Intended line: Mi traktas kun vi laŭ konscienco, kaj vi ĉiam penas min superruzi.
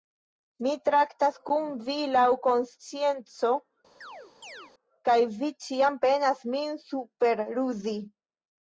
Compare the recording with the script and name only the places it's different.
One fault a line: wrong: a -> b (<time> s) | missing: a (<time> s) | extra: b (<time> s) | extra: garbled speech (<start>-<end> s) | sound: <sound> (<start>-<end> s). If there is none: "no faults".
sound: chirp (4.0-4.7 s)